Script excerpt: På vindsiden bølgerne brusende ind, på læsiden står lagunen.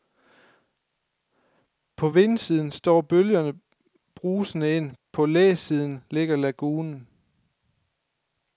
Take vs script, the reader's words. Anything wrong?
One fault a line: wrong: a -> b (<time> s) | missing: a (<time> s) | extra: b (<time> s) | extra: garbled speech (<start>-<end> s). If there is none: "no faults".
extra: står (2.7 s)
wrong: står -> ligger (6.1 s)